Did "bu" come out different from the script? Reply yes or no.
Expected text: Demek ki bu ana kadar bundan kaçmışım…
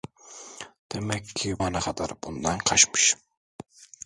yes